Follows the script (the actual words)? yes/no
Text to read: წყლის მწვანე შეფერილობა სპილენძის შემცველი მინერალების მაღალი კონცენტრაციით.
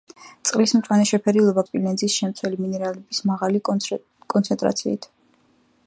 yes